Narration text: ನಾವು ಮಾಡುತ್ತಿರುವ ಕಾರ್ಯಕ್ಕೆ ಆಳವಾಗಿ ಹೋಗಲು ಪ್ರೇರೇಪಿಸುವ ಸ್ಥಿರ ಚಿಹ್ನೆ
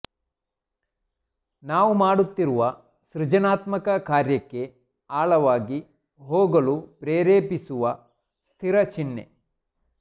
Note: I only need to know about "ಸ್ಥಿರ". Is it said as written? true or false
true